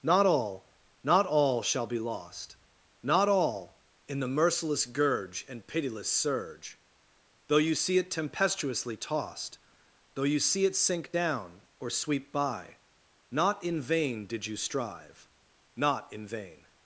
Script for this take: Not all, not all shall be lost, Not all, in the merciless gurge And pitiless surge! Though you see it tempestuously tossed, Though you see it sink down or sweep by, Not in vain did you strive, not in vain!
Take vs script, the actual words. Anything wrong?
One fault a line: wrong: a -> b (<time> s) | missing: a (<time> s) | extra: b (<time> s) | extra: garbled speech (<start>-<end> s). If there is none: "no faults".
no faults